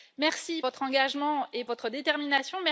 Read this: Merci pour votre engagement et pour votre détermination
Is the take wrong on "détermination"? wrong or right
right